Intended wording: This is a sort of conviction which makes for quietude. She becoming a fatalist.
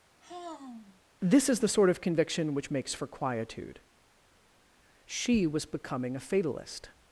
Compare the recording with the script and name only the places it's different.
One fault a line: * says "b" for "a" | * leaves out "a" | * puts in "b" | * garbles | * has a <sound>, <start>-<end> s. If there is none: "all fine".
* has a sigh, 0.2-1.0 s
* says "the" for "a"
* puts in "was"